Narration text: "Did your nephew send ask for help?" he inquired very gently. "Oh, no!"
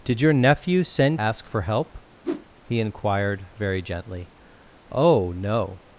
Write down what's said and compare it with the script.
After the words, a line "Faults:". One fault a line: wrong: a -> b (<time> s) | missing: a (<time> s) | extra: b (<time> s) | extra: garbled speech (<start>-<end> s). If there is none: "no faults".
"Did your nephew send ask for help?" he inquired very gently. "Oh, no!"
Faults:
no faults